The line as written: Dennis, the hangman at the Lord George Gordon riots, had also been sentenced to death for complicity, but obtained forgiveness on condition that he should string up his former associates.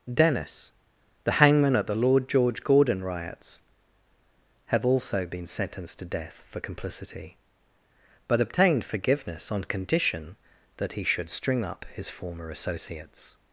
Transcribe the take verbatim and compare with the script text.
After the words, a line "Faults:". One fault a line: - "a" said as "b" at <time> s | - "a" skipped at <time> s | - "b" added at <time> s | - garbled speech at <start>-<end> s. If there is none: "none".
Dennis, the hangman at the Lord George Gordon riots, have also been sentenced to death for complicity, but obtained forgiveness on condition that he should string up his former associates.
Faults:
- "had" said as "have" at 4.7 s